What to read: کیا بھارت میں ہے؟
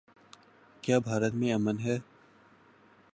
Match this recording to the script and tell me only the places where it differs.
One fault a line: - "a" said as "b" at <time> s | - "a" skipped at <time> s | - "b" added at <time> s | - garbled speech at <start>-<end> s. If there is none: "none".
- "امن" added at 1.5 s